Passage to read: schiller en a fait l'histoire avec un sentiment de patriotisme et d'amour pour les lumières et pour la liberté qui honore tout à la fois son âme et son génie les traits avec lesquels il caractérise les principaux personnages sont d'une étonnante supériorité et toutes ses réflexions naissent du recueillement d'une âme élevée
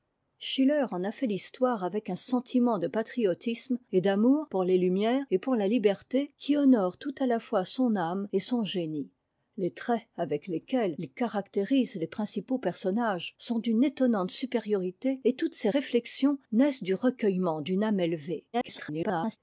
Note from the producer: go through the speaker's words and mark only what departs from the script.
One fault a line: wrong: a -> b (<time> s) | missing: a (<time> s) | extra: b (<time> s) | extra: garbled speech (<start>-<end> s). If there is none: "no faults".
extra: garbled speech (18.5-19.4 s)